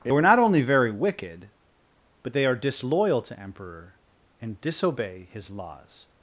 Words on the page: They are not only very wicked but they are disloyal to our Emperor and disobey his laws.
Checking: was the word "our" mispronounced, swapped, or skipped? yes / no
yes